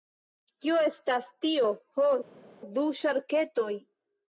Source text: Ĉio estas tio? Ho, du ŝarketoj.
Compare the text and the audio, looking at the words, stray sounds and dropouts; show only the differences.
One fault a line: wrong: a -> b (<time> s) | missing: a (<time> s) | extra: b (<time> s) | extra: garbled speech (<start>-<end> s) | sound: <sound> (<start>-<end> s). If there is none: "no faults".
wrong: Ĉio -> Kio (0.6 s)